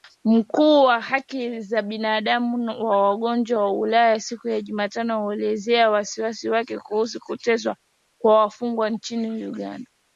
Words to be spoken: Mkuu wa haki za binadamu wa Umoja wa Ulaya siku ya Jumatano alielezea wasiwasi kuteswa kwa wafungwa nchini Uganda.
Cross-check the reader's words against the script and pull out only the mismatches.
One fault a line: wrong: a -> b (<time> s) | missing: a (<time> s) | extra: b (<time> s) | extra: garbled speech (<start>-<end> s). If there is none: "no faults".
extra: wake kuhusu (6.5 s)